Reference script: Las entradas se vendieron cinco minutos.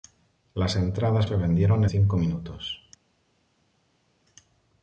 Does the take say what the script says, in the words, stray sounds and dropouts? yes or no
yes